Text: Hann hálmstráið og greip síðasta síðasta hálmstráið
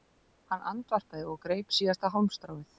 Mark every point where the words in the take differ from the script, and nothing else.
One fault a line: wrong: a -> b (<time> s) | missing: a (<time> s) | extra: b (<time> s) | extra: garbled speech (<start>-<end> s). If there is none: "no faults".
wrong: hálmstráið -> andvarpaði (0.7 s)
missing: síðasta (2.1 s)